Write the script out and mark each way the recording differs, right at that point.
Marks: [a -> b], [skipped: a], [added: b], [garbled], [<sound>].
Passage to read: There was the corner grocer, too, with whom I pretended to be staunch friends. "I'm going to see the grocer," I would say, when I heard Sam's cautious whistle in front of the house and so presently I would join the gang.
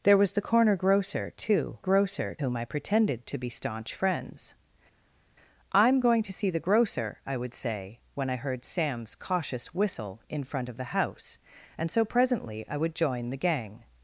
There was the corner grocer, too, [with -> grocer] whom I pretended to be staunch friends. "I'm going to see the grocer," I would say, when I heard Sam's cautious whistle in front of the house and so presently I would join the gang.